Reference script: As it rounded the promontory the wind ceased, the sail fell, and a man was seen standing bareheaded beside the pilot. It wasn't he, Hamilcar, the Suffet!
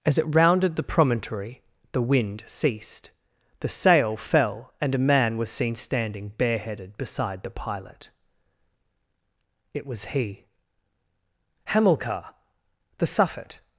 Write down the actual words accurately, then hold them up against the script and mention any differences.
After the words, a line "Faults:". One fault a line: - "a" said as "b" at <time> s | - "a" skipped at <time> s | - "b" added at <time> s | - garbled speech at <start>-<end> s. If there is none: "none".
As it rounded the promontory the wind ceased, the sail fell, and a man was seen standing bareheaded beside the pilot. It was he, Hamilcar, the Suffet!
Faults:
- "wasn't" said as "was" at 9.9 s